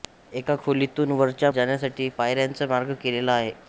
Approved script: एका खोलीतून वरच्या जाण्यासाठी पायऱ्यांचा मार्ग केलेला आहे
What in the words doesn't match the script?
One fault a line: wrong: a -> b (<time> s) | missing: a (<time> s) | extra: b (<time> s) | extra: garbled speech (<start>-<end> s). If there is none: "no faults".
no faults